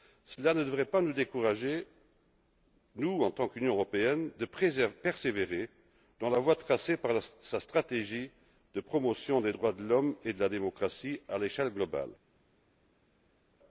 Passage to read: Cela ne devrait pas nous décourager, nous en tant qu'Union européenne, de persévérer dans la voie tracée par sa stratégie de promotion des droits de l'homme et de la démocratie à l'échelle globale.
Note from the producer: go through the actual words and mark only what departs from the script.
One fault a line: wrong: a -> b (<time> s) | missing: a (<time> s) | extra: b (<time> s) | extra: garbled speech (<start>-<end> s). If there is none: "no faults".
no faults